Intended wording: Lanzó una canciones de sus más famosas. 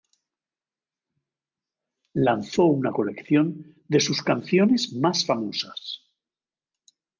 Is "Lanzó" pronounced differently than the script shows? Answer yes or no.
no